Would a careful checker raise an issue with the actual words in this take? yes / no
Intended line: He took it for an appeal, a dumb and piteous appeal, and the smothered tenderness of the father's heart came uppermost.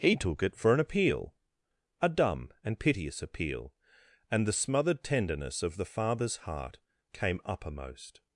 no